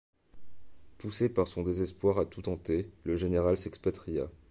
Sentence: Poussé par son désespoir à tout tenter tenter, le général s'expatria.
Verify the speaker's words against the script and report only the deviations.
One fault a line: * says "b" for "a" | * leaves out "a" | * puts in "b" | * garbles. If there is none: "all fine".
* leaves out "tenter"